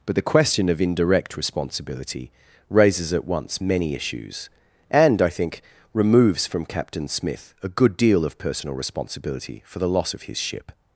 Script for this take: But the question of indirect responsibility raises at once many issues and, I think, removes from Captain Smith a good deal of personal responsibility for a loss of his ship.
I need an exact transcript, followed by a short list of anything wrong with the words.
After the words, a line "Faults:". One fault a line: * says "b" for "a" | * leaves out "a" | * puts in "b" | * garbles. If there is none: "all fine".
But the question of indirect responsibility raises at once many issues and, I think, removes from Captain Smith a good deal of personal responsibility for the loss of his ship.
Faults:
* says "the" for "a"